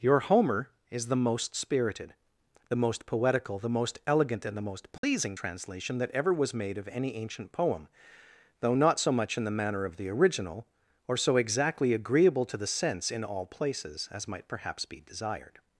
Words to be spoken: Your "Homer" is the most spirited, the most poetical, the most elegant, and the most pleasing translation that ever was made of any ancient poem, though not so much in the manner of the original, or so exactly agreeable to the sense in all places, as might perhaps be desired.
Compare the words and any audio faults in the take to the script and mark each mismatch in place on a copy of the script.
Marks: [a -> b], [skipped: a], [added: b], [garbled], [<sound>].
Your "Homer" is the most spirited, the most poetical, the most elegant, and the most pleasing [dropout] translation that ever was made of any ancient poem, though not so much in the manner of the original, or so exactly agreeable to the sense in all places, as might perhaps be desired.